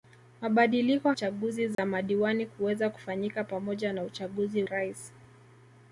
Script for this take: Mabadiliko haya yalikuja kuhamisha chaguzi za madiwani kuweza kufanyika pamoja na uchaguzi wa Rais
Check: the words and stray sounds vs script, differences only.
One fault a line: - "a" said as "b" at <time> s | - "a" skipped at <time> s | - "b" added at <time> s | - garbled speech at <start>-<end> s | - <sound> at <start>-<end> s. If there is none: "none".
- "haya yalikuja kuhamisha" skipped at 1.1 s
- dropout at 1.7-1.8 s
- "wa" skipped at 4.6 s